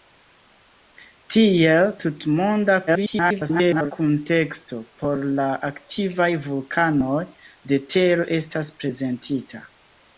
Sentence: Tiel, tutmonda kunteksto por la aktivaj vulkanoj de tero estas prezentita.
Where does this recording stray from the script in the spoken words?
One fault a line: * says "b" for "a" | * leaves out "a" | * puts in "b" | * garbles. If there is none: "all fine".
* garbles